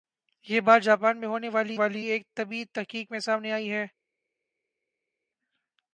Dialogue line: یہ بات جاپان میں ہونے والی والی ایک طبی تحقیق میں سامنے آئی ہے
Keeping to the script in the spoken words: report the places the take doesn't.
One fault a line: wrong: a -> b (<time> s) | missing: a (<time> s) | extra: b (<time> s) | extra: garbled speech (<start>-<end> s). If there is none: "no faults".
no faults